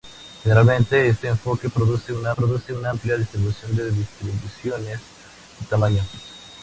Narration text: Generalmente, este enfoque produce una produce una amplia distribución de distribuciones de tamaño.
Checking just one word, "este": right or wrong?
right